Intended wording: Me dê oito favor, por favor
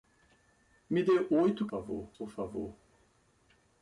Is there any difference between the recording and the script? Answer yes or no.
no